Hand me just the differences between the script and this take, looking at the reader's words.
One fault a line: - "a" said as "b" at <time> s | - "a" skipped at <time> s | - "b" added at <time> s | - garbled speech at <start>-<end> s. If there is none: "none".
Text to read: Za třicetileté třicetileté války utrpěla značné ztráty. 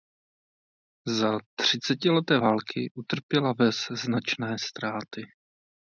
- "třicetileté" skipped at 2.4 s
- "ves" added at 3.6 s